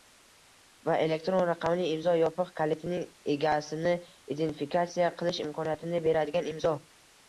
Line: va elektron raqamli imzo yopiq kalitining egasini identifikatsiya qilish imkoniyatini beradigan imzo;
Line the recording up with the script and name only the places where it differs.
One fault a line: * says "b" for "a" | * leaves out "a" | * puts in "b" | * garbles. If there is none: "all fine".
all fine